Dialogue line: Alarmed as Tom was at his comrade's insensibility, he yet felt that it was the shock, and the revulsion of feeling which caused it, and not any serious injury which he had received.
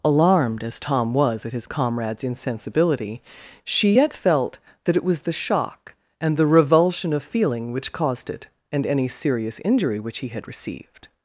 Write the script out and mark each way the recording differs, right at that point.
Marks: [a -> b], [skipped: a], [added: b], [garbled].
Alarmed as Tom was at his comrade's insensibility, [he -> she] yet felt that it was the shock, and the revulsion of feeling which caused it, and [skipped: not] any serious injury which he had received.